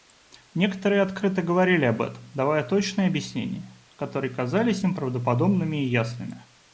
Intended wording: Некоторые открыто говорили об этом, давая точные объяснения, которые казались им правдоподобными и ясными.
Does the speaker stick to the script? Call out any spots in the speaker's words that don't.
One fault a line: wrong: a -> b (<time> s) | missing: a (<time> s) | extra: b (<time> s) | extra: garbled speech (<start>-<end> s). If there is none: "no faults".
no faults